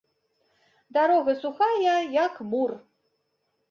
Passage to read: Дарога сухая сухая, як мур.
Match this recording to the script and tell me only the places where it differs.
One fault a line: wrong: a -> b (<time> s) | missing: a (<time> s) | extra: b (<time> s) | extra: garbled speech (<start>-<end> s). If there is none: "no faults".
missing: сухая (1.9 s)